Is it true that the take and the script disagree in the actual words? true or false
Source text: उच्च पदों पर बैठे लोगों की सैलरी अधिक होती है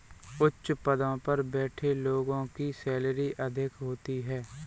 false